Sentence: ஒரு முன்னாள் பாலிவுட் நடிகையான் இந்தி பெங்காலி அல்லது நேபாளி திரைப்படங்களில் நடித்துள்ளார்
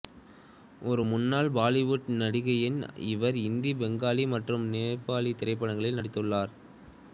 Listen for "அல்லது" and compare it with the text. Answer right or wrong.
wrong